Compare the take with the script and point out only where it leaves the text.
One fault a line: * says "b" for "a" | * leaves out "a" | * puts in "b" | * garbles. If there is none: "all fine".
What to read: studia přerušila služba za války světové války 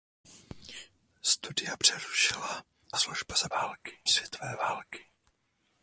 all fine